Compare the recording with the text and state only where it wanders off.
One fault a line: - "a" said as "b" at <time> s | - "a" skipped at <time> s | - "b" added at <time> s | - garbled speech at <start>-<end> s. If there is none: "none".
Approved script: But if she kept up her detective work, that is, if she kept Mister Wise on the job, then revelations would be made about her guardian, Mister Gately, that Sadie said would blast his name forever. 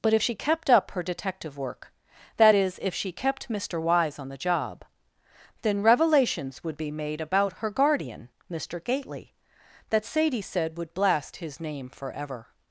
none